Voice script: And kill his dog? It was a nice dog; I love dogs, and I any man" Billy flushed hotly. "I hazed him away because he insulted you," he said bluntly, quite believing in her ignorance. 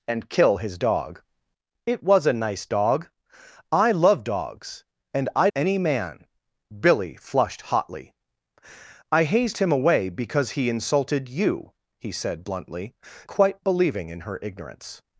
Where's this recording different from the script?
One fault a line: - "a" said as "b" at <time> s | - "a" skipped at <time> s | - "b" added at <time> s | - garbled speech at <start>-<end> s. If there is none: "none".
none